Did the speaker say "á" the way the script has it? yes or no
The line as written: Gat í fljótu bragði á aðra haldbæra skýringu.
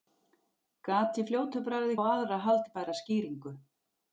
yes